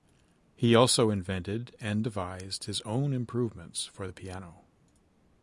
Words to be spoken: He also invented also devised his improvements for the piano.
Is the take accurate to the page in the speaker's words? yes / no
no